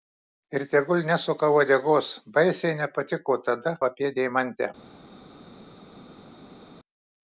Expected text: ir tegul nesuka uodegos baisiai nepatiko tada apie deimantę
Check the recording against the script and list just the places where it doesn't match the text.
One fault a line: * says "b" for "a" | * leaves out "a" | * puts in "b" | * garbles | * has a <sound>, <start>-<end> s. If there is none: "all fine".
all fine